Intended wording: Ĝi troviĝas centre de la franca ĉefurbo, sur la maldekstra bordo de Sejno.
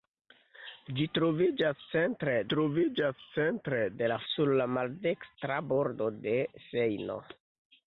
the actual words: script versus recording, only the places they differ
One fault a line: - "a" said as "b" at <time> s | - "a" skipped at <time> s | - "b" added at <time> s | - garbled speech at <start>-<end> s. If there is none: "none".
- "troviĝas centre" added at 2.5 s
- "franca ĉefurbo" skipped at 4.2 s